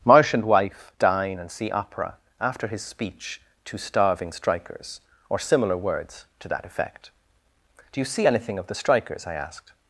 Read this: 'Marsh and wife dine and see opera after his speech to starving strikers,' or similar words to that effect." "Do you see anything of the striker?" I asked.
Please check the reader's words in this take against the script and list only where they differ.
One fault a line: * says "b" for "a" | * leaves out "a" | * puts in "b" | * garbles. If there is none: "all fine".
* says "strikers" for "striker"